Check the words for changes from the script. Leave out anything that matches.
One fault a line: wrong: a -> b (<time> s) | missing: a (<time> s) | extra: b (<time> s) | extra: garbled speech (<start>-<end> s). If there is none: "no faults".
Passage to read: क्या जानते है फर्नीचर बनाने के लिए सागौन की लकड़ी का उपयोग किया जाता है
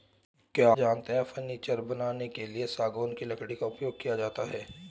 no faults